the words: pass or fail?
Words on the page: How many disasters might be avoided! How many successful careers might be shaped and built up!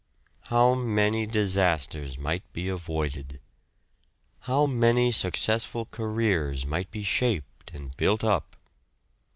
pass